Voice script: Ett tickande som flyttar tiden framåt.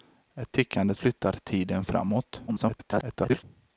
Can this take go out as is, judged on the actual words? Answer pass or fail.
fail